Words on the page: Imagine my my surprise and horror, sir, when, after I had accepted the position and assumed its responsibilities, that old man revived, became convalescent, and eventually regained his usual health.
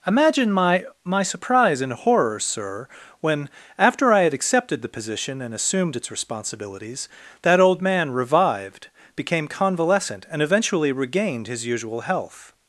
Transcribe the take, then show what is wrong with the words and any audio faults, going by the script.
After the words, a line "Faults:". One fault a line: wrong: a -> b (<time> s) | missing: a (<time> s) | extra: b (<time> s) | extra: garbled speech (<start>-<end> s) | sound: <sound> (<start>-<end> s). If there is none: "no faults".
Imagine my my surprise and horror, sir, when, after I had accepted the position and assumed its responsibilities, that old man revived, became convalescent, and eventually regained his usual health.
Faults:
no faults